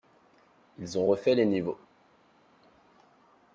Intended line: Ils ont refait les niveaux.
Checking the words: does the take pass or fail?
pass